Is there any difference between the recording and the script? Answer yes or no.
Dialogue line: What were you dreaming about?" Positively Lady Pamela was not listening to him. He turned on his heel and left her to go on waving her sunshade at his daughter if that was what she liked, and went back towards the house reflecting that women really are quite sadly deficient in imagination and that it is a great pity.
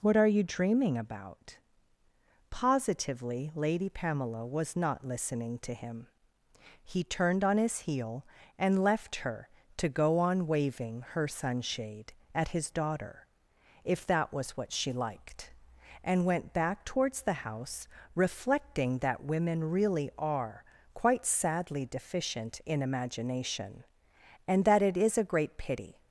yes